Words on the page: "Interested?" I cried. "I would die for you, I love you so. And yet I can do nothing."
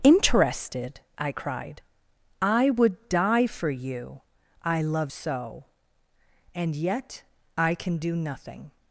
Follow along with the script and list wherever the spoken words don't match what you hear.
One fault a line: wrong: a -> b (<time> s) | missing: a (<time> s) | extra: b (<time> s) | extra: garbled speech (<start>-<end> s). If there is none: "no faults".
missing: you (5.1 s)